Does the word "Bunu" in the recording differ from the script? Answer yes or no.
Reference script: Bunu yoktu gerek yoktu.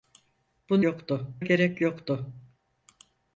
no